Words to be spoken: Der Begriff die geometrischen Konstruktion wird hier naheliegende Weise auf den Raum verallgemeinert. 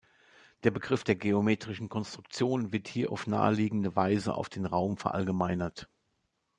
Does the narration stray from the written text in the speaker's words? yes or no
yes